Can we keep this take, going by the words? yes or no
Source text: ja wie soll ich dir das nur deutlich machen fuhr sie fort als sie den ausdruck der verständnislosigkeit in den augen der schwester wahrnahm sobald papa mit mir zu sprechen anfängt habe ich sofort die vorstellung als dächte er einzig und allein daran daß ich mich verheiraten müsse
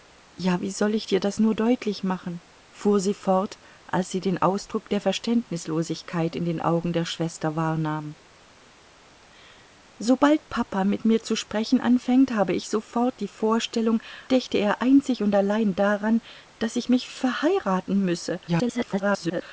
no